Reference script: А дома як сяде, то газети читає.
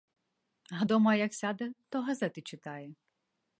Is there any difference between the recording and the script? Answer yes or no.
no